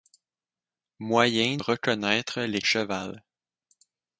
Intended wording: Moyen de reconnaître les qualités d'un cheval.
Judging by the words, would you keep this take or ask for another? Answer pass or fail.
fail